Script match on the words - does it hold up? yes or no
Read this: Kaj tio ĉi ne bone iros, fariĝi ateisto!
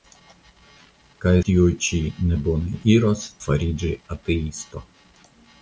yes